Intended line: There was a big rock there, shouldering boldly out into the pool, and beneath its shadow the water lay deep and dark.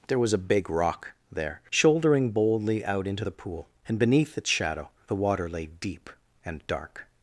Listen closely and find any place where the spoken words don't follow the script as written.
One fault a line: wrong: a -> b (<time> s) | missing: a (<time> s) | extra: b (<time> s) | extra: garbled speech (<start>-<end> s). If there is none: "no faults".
no faults